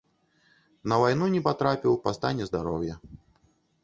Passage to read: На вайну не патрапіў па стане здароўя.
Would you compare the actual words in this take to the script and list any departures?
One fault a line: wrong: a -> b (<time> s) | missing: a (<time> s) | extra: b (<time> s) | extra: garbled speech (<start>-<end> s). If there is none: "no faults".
no faults